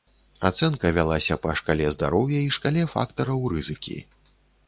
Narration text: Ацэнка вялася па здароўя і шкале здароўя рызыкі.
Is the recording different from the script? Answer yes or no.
yes